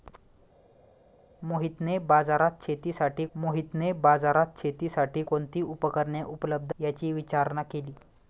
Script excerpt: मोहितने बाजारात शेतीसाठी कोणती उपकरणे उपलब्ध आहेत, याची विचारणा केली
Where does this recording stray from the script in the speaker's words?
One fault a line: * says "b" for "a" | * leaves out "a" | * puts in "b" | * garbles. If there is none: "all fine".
* puts in "मोहितने बाजारात शेतीसाठी"
* leaves out "आहेत"